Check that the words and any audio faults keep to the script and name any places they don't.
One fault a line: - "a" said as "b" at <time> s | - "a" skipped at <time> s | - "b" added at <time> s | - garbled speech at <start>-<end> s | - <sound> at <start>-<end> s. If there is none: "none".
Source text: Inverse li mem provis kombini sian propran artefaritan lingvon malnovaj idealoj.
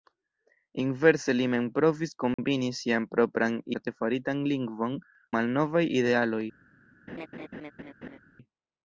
- dropout at 2.3-2.4 s
- laugh at 7.1-8.2 s